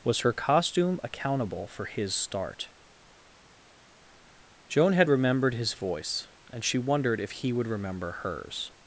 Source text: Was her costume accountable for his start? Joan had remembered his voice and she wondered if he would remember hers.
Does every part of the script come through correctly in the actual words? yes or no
yes